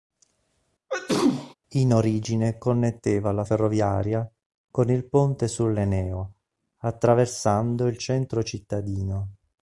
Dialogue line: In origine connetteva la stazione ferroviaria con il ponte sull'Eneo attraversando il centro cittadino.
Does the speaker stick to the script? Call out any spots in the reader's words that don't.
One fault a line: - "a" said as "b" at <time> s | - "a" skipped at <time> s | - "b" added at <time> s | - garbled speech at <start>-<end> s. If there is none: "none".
- "stazione" skipped at 3.4 s